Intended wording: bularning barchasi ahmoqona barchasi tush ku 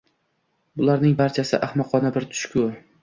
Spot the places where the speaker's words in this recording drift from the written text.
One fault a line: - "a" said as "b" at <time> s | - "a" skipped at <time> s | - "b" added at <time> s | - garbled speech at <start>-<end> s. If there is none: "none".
- "barchasi" said as "bir" at 2.2 s